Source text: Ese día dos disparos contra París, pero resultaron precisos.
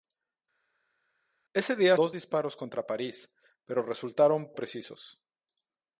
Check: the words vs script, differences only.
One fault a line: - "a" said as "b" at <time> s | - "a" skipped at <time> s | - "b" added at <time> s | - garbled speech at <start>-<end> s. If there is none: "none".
none